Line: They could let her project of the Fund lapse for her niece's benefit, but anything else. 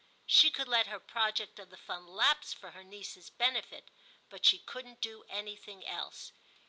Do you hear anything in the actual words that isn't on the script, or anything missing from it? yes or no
yes